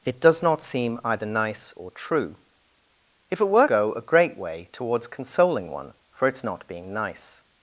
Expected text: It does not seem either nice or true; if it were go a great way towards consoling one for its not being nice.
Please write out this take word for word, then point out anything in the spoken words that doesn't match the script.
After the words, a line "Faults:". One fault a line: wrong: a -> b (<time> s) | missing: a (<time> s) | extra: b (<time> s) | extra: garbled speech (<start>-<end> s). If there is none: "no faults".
It does not seem either nice or true; if it were go a great way towards consoling one for its not being nice.
Faults:
no faults